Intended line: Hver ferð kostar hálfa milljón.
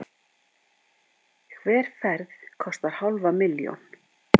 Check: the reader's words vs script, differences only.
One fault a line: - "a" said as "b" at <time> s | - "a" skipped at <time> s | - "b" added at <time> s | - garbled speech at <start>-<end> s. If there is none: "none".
none